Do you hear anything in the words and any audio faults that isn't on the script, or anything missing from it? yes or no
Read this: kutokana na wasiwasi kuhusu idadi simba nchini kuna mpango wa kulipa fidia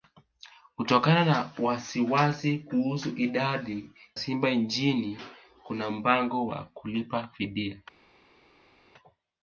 no